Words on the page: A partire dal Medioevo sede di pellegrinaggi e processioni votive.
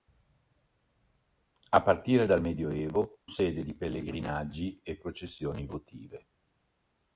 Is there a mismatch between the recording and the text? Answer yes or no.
no